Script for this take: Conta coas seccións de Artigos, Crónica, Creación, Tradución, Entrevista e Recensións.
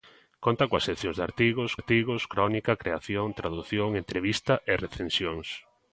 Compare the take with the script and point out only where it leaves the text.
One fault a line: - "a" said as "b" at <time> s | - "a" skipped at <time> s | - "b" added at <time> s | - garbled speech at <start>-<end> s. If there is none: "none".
- "Artigos" added at 1.8 s